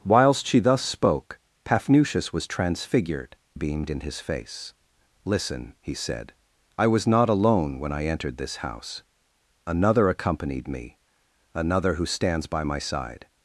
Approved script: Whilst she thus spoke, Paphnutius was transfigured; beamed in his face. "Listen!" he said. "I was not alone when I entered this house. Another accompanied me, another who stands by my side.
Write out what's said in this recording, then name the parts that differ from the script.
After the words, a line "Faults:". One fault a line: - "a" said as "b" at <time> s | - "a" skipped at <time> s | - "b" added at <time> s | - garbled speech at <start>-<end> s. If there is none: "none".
Whilst she thus spoke, Paphnutius was transfigured; beamed in his face. "Listen!" he said. "I was not alone when I entered this house. Another accompanied me, another who stands by my side.
Faults:
none